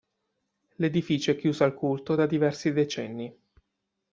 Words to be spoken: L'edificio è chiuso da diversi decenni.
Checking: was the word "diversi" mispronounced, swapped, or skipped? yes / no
no